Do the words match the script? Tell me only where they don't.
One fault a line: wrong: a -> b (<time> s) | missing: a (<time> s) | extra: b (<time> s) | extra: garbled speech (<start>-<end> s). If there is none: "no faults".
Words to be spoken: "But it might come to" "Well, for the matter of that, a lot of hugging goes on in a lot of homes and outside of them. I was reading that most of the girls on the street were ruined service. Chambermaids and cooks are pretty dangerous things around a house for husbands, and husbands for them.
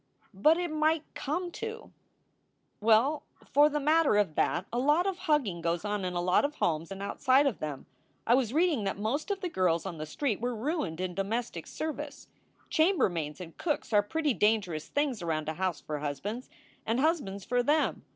extra: in domestic (11.0 s)